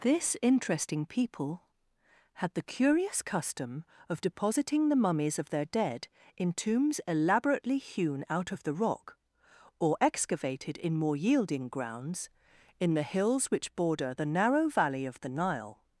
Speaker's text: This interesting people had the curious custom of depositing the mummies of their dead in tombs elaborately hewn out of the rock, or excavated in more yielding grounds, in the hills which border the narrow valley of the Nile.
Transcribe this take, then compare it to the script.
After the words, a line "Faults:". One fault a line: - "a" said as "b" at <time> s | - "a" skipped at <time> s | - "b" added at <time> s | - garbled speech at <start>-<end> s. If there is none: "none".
This interesting people had the curious custom of depositing the mummies of their dead in tombs elaborately hewn out of the rock, or excavated in more yielding grounds, in the hills which border the narrow valley of the Nile.
Faults:
none